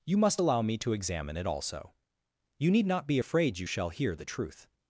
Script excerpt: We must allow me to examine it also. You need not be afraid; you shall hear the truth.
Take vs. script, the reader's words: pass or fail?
fail